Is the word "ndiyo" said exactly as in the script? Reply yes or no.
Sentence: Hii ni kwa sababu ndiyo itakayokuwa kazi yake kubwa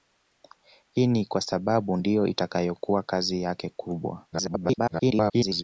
yes